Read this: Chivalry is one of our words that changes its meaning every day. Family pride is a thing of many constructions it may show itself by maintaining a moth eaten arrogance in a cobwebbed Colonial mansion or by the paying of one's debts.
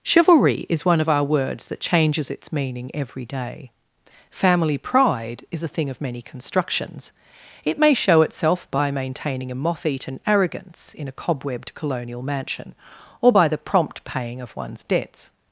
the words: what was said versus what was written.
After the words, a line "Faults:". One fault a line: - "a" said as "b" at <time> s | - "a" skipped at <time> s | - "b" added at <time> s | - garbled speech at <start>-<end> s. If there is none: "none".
Chivalry is one of our words that changes its meaning every day. Family pride is a thing of many constructions it may show itself by maintaining a moth eaten arrogance in a cobwebbed Colonial mansion or by the prompt paying of one's debts.
Faults:
- "prompt" added at 13.6 s